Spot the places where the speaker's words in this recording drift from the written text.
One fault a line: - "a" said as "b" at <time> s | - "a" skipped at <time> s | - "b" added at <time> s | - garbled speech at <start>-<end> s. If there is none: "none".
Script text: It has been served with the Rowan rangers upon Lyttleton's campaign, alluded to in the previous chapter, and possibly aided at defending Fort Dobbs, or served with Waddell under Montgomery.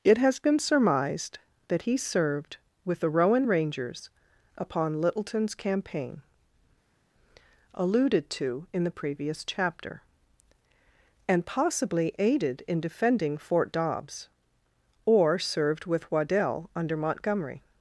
- "surmised that he" added at 0.6 s
- "at" said as "in" at 12.7 s